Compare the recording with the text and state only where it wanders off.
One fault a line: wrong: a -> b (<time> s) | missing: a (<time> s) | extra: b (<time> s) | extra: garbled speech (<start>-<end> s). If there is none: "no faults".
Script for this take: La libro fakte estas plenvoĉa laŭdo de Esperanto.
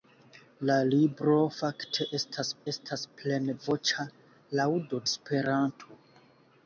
extra: estas (2.7 s)
missing: de (5.0 s)